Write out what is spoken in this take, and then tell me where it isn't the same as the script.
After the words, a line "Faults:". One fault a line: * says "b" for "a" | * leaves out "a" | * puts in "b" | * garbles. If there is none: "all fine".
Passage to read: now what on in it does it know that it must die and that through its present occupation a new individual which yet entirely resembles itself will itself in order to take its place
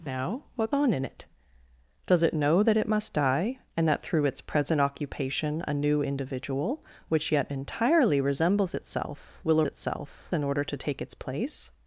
now what on in it does it know that it must die and that through its present occupation a new individual which yet entirely resembles itself will itself in order to take its place
Faults:
all fine